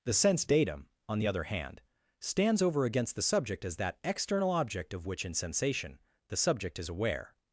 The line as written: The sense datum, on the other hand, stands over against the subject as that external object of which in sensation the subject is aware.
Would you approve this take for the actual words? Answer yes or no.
yes